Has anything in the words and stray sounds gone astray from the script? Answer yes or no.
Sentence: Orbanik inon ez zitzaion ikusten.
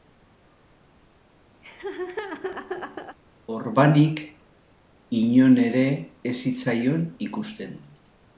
yes